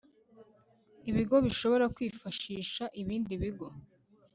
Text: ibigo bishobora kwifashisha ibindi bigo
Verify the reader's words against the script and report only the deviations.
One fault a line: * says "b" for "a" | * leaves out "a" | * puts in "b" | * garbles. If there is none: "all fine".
all fine